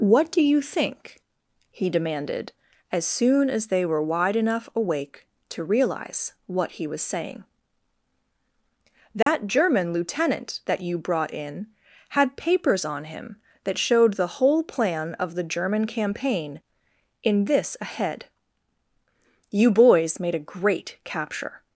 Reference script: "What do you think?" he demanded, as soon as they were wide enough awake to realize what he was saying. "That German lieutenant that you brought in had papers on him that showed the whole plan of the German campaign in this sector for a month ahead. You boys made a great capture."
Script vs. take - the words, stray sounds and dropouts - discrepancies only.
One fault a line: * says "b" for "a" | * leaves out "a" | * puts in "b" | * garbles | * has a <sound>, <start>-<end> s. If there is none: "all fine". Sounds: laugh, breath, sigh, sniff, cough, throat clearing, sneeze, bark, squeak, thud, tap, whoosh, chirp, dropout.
* has a dropout, 9.2-9.3 s
* leaves out "sector for a month"